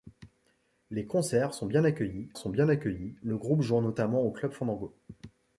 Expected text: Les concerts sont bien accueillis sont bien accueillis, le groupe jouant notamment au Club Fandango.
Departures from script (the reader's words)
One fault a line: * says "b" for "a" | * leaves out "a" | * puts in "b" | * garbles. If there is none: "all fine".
all fine